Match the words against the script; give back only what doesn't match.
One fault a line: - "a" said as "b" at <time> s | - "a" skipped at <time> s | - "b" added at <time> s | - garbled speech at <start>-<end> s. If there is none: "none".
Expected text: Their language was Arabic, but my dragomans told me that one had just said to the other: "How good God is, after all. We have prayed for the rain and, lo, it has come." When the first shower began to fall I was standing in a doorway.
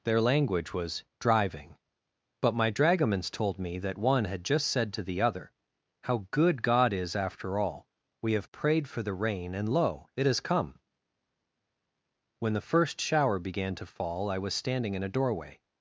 - "Arabic" said as "Driving" at 1.2 s